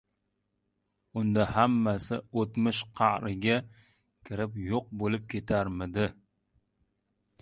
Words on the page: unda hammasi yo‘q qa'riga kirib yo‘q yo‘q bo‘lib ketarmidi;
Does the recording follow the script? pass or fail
fail